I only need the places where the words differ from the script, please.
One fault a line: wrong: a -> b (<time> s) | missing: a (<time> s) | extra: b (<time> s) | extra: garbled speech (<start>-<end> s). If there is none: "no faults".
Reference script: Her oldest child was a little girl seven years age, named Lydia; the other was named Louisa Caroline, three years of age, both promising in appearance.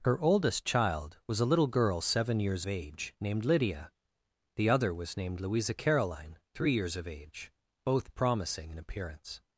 no faults